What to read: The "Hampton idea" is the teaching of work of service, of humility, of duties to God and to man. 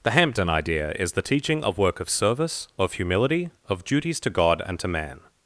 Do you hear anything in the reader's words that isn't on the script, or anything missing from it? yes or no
no